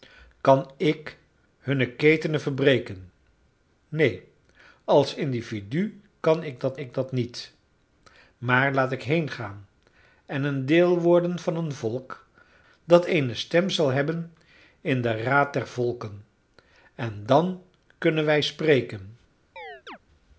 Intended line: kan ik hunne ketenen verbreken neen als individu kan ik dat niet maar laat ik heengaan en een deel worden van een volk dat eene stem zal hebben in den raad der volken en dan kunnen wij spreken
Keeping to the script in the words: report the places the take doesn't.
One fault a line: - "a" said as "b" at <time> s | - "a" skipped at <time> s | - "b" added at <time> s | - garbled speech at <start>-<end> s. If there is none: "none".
- "ik dat" added at 6.8 s